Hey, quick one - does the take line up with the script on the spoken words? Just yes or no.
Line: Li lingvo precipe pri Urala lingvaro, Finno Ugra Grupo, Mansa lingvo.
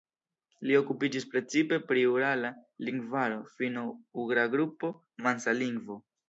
no